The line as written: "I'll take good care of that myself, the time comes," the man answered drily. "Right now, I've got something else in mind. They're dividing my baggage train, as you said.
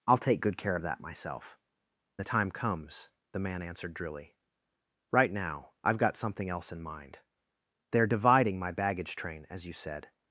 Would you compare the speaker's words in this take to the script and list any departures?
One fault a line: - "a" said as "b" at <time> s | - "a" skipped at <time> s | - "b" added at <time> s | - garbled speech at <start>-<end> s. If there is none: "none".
none